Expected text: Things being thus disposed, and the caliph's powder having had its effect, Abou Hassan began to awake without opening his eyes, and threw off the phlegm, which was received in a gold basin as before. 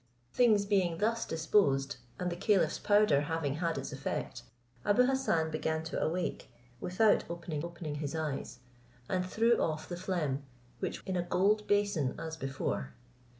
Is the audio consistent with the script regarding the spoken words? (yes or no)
no